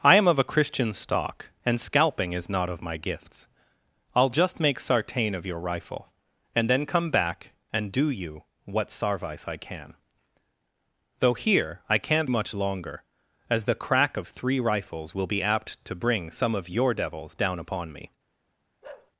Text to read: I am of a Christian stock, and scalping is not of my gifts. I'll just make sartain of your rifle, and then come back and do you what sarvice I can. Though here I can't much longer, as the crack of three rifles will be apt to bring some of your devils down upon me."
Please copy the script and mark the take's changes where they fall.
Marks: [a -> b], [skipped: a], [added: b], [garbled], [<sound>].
I am of a Christian stock, and scalping is not of my gifts. I'll just make sartain of your rifle, and then come back and do you what sarvice I can. Though here I can't much longer, as the crack of three rifles will be apt to bring some of your devils down upon me." [bark]